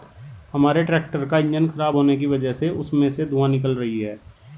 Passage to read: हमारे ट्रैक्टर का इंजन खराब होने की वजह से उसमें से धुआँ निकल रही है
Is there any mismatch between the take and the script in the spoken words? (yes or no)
no